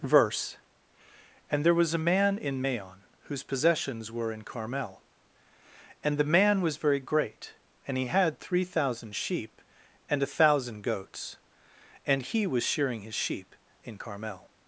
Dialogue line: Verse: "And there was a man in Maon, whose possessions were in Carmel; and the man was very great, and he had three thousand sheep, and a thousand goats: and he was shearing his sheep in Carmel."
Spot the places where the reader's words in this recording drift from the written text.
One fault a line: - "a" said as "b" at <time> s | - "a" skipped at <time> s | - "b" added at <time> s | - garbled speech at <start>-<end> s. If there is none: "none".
none